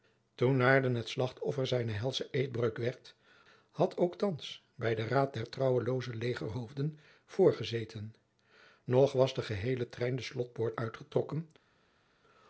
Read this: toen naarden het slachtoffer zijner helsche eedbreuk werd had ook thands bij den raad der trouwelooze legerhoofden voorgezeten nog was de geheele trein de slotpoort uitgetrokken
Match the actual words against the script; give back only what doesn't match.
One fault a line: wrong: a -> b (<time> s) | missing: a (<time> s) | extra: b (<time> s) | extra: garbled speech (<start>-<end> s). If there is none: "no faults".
no faults